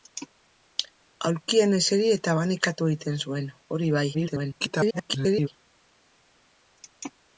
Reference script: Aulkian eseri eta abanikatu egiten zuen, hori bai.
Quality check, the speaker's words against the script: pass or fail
fail